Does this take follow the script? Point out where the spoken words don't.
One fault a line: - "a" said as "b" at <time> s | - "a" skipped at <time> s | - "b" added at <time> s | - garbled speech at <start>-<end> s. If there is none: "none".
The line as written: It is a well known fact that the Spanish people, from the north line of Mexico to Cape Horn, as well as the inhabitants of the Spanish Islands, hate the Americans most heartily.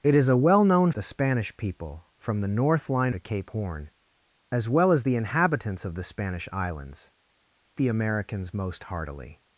- "fact that" skipped at 0.9 s
- "of Mexico" skipped at 3.1 s
- "hate" skipped at 7.1 s